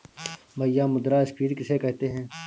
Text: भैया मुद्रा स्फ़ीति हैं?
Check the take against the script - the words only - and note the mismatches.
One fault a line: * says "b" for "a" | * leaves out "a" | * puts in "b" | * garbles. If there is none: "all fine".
* puts in "किसे कहते"